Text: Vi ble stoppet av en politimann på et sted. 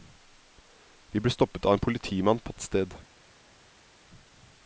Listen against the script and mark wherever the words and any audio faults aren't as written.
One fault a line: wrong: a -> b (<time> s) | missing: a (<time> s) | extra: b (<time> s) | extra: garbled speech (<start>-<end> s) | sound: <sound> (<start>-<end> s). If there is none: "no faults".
no faults